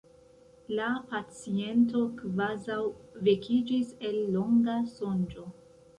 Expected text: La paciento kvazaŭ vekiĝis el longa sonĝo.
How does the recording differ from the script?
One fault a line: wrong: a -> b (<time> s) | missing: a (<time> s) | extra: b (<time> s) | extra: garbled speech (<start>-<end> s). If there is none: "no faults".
no faults